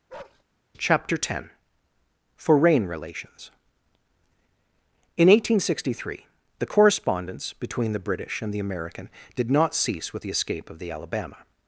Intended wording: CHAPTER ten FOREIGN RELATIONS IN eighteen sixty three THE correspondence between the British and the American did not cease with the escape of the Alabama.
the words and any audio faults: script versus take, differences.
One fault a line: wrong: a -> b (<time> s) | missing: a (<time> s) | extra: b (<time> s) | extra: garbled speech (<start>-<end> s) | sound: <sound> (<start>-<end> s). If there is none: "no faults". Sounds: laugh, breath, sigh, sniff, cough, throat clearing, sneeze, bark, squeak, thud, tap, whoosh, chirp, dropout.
sound: bark (0.1-0.4 s)